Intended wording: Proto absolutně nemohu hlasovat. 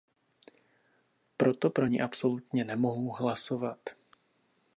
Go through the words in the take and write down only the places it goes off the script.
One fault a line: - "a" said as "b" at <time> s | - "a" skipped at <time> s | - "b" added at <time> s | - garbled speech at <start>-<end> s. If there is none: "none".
- "pro ni" added at 1.7 s